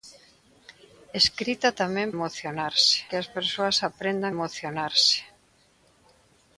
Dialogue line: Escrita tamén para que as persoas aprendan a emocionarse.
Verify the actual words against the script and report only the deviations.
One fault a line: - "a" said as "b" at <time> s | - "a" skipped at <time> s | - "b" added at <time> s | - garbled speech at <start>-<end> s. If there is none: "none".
- "para" said as "emocionarse" at 2.1 s
- "a" skipped at 4.3 s